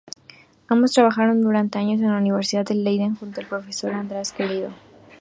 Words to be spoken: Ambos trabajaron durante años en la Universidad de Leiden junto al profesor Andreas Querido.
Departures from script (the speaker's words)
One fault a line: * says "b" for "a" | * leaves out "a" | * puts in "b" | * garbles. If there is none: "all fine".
all fine